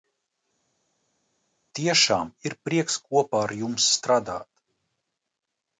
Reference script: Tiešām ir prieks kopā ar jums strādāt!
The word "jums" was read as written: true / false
true